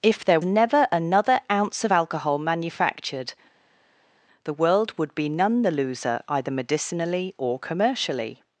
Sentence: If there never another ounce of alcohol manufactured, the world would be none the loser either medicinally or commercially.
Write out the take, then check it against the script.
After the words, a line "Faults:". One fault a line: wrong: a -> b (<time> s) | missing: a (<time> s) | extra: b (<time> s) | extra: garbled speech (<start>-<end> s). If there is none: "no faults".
If there never another ounce of alcohol manufactured, the world would be none the loser either medicinally or commercially.
Faults:
no faults